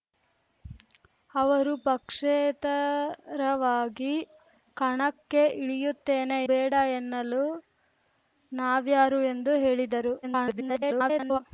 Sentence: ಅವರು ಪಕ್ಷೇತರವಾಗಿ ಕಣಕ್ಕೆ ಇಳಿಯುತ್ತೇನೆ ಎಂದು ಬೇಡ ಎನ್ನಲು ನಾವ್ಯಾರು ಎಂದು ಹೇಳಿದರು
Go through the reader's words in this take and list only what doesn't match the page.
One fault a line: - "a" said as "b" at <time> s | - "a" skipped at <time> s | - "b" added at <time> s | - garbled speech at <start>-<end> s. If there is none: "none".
- "ಎಂದು" skipped at 6.4 s
- garbled speech at 10.2-11.4 s